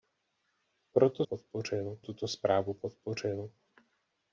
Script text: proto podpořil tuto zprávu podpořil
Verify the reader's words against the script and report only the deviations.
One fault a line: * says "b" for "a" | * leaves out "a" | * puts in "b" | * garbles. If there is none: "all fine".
all fine